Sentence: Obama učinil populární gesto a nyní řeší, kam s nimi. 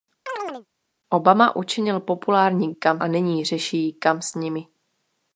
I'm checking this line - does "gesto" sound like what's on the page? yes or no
no